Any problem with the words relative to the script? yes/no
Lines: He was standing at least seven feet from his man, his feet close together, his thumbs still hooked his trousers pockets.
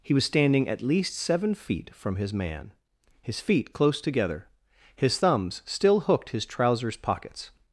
no